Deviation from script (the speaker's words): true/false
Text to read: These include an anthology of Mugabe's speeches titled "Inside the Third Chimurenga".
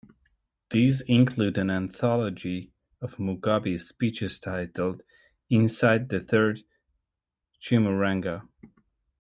false